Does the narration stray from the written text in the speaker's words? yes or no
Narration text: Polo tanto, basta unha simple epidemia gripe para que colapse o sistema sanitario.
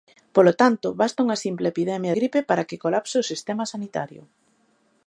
no